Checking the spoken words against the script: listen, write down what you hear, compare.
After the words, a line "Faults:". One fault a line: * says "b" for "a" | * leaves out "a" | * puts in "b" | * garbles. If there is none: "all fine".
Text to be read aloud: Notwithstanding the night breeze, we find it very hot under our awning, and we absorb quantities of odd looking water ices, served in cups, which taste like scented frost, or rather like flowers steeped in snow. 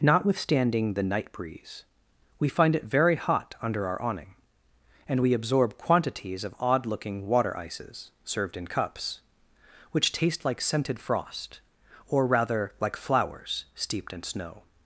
Notwithstanding the night breeze, we find it very hot under our awning, and we absorb quantities of odd looking water ices, served in cups, which taste like scented frost, or rather like flowers steeped in snow.
Faults:
all fine